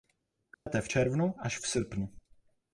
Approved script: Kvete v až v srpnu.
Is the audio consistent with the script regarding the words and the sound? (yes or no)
no